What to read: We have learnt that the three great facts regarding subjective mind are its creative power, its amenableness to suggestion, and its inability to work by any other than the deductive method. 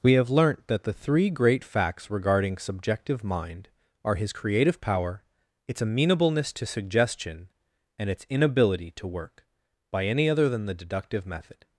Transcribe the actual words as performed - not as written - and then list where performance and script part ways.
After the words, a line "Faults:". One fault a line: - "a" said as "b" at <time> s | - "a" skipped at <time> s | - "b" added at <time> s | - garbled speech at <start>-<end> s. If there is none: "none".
We have learnt that the three great facts regarding subjective mind are his creative power, its amenableness to suggestion, and its inability to work by any other than the deductive method.
Faults:
- "its" said as "his" at 4.2 s